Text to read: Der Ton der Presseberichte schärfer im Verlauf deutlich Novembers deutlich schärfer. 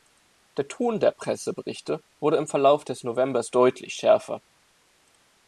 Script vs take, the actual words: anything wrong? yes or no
yes